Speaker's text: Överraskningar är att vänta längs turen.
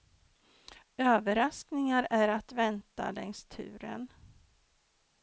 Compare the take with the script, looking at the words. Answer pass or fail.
pass